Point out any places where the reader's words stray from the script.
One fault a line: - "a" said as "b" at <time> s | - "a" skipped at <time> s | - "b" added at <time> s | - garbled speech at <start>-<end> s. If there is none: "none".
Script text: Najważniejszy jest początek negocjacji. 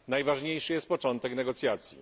none